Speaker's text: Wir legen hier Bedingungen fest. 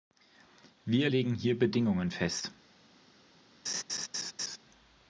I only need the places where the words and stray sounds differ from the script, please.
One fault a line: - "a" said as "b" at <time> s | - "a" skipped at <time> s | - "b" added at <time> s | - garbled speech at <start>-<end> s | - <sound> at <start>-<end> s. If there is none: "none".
- laugh at 3.7-4.6 s